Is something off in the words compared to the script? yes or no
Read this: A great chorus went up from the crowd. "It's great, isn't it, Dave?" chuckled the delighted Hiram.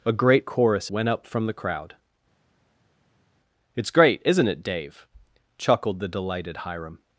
no